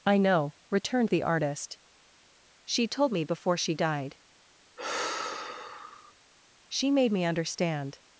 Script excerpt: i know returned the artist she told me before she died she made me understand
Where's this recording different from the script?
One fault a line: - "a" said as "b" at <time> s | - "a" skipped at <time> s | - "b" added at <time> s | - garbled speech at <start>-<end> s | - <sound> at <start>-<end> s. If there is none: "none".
- sigh at 4.8-6.1 s